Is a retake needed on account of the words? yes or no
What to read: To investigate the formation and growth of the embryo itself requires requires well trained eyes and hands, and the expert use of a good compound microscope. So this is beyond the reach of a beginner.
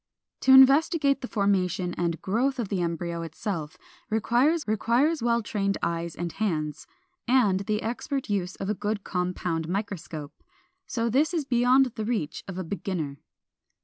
no